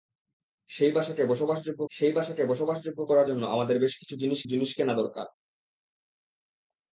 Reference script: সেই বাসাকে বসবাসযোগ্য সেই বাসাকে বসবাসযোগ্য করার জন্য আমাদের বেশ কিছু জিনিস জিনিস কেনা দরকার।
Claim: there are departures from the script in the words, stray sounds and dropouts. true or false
false